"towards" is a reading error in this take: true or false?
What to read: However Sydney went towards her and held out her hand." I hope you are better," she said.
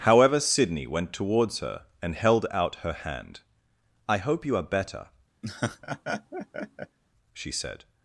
false